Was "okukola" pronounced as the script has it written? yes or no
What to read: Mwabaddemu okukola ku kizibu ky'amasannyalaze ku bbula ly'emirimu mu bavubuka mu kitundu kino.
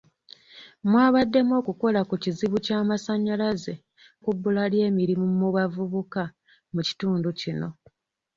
yes